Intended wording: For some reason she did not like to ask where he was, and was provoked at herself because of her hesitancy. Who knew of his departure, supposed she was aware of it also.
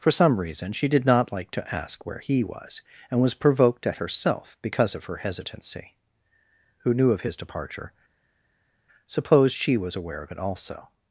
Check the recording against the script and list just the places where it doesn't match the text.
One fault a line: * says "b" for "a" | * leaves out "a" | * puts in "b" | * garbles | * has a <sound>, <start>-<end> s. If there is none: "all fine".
all fine